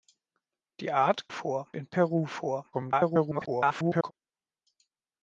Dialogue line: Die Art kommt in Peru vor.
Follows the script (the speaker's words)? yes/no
no